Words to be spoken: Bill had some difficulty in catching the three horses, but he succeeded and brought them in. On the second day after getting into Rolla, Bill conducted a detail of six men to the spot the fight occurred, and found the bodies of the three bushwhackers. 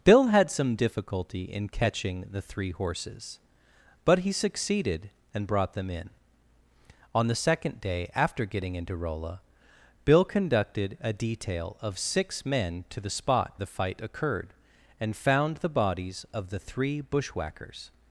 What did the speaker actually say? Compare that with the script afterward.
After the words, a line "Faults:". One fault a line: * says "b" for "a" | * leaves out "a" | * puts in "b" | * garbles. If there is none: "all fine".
Bill had some difficulty in catching the three horses, but he succeeded and brought them in. On the second day after getting into Rolla, Bill conducted a detail of six men to the spot the fight occurred, and found the bodies of the three bushwhackers.
Faults:
all fine